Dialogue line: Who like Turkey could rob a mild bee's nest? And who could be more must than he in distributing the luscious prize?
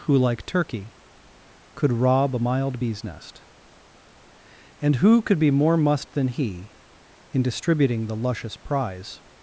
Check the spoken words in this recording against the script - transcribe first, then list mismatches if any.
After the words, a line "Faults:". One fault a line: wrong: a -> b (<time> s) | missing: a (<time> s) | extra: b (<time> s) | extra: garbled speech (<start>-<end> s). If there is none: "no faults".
Who like Turkey could rob a mild bee's nest? And who could be more must than he in distributing the luscious prize?
Faults:
no faults